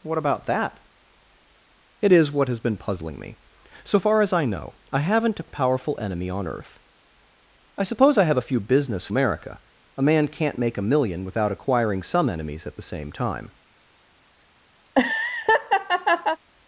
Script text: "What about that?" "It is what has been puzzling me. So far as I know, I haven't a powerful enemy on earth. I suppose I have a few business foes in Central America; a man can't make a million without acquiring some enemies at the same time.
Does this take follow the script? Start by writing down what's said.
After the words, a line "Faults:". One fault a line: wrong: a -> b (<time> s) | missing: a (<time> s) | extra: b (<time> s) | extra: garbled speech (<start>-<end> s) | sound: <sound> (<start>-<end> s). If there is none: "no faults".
"What about that?" "It is what has been puzzling me. So far as I know, I haven't a a powerful enemy on earth. I suppose I have a few business America; a man can't make a million without acquiring some enemies at the same time.
Faults:
extra: a (5.4 s)
missing: foes in Central (9.1 s)
sound: laugh (14.8-16.4 s)